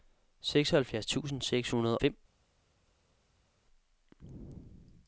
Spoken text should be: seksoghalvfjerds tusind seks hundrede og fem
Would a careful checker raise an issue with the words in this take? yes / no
yes